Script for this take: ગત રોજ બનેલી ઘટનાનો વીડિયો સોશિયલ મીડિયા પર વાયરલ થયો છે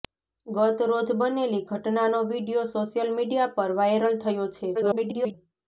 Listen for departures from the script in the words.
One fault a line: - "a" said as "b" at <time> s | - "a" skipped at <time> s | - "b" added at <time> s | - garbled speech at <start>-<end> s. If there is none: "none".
- garbled speech at 4.7-5.3 s